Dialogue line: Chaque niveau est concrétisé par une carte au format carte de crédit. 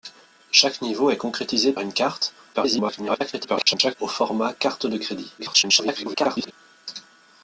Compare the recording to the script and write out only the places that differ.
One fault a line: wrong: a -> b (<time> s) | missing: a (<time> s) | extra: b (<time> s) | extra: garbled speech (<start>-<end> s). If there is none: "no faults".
missing: par (1.7 s)
extra: garbled speech (2.5-4.0 s)
extra: garbled speech (5.4-6.5 s)